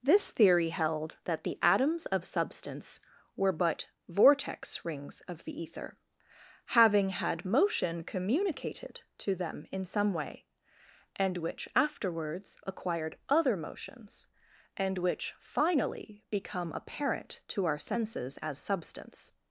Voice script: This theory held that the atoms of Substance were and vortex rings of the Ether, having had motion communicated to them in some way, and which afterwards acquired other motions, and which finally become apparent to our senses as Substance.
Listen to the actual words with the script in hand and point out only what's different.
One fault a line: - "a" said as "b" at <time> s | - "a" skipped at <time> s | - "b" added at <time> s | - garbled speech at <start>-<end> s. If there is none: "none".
- "and" said as "but" at 3.5 s